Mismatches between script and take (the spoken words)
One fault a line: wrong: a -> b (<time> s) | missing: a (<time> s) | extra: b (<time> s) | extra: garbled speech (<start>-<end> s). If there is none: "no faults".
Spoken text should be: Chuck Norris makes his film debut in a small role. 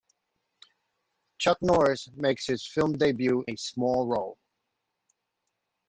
missing: in (3.5 s)